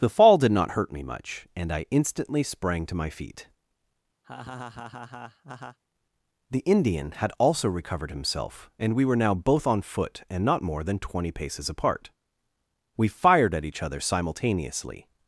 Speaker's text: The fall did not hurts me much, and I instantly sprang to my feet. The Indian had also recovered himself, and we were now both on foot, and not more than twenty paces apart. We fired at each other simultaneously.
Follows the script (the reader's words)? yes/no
no